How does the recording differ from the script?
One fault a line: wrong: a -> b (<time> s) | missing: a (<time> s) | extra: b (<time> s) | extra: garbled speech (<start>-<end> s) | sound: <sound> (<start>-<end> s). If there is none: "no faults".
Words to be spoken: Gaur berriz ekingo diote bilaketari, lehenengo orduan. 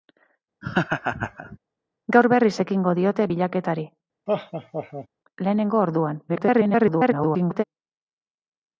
sound: laugh (0.6-1.6 s)
sound: laugh (4.3-5.1 s)
extra: garbled speech (6.3-7.6 s)